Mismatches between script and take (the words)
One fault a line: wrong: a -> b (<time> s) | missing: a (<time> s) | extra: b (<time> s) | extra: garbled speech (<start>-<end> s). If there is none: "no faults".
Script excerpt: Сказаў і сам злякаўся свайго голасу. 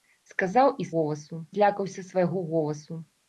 wrong: сам -> голасу (1.0 s)